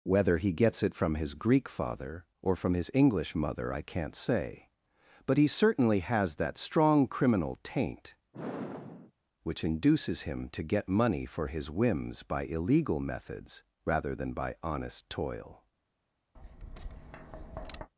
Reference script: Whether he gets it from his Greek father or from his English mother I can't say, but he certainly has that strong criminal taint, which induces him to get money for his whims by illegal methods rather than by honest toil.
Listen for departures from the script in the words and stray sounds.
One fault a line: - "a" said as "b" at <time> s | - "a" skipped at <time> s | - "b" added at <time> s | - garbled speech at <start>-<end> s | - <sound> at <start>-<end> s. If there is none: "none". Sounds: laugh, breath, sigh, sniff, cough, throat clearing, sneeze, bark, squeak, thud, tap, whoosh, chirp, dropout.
- sigh at 8.3-9.1 s
- tap at 16.3-17.9 s